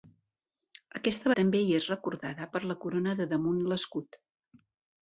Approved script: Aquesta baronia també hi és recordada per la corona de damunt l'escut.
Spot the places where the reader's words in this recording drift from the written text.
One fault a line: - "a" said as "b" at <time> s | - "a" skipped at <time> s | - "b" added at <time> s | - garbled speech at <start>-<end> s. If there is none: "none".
- "baronia" skipped at 1.3 s